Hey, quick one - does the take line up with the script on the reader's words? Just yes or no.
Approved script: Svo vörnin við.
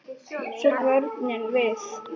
yes